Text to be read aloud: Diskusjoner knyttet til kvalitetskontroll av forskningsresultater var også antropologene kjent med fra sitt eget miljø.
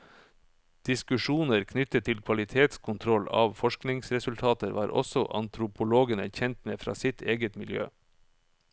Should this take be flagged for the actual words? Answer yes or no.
no